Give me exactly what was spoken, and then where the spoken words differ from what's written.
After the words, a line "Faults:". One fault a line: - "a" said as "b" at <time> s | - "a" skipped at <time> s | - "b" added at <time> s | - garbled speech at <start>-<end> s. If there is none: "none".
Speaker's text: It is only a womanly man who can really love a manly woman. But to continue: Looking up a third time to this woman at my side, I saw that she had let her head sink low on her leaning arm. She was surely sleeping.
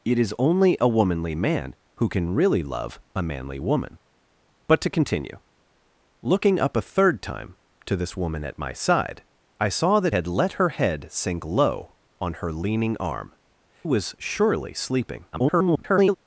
It is only a womanly man who can really love a manly woman. But to continue: Looking up a third time to this woman at my side, I saw that had let her head sink low on her leaning arm. Was surely sleeping. [garbled]
Faults:
- "she" skipped at 10.2 s
- "She" skipped at 13.3 s
- garbled speech at 15.3-16.2 s